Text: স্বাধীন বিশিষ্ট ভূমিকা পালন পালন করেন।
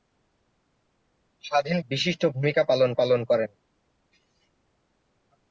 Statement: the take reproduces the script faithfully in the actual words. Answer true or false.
true